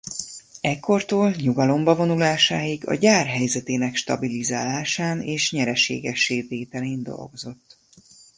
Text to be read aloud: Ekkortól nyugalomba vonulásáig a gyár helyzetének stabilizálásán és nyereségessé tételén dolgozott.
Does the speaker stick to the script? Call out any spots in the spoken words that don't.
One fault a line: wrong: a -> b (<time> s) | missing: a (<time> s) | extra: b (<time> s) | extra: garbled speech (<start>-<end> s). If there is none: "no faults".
no faults